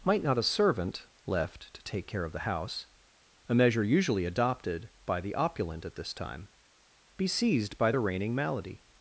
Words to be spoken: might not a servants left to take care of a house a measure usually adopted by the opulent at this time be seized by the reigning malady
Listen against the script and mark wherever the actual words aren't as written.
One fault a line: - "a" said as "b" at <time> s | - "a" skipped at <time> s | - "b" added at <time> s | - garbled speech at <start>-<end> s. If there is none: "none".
- "servants" said as "servant" at 0.4 s
- "a" said as "the" at 2.3 s